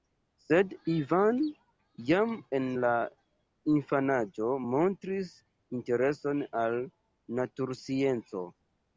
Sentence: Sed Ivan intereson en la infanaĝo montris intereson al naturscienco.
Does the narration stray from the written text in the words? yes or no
yes